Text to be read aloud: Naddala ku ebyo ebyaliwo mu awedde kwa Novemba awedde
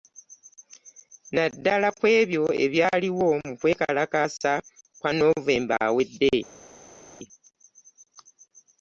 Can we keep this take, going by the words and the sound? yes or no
no